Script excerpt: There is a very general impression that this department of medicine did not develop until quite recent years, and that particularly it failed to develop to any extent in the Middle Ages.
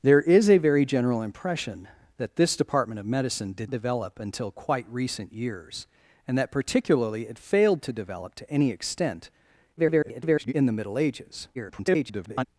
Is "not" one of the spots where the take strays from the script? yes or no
yes